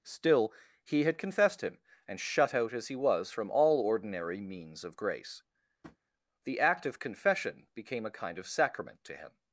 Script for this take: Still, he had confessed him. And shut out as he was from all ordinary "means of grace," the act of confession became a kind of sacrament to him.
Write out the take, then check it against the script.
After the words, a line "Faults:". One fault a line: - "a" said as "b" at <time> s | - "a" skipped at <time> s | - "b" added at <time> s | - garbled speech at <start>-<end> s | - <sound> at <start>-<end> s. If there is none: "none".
Still, he had confessed him. And shut out as he was from all ordinary "means of grace," the act of confession became a kind of sacrament to him.
Faults:
- tap at 5.8-6.0 s